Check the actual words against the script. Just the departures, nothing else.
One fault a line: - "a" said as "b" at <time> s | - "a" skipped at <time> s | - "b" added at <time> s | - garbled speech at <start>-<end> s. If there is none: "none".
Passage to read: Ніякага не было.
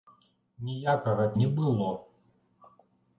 none